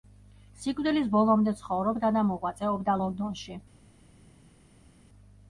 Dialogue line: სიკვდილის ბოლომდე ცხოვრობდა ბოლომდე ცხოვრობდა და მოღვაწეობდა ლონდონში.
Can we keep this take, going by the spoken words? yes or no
no